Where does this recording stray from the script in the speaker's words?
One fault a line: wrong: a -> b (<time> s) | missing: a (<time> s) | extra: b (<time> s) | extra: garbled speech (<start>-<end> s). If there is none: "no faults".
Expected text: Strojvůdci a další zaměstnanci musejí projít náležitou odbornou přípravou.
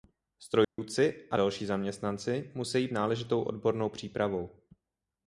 missing: projít (2.9 s)